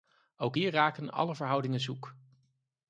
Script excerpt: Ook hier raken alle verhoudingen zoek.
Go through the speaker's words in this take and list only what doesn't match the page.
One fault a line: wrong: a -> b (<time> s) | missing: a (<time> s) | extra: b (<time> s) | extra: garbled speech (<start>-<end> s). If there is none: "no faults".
no faults